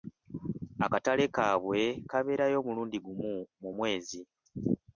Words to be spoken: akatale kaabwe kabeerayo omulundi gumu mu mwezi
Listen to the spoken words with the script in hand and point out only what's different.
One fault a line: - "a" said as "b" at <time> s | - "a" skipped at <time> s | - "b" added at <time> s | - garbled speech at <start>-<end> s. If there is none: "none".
none